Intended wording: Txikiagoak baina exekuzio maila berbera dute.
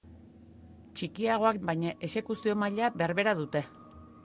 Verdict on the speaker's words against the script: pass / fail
pass